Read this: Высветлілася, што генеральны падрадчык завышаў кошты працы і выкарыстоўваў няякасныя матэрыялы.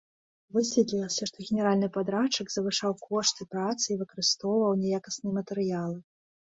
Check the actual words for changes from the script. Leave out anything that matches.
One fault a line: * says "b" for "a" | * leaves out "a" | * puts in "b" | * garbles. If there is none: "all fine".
all fine